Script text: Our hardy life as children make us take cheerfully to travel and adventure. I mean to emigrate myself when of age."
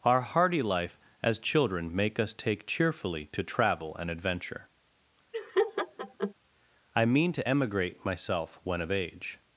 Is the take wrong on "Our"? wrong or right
right